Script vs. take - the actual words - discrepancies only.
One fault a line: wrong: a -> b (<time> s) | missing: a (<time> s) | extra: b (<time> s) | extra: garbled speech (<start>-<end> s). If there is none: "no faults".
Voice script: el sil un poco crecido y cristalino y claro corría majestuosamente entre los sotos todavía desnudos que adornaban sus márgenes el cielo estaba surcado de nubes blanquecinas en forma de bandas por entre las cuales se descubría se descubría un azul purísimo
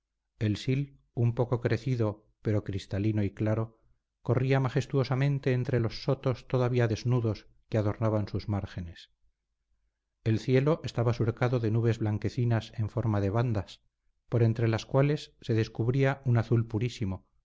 wrong: y -> pero (2.4 s)
missing: se descubría (16.2 s)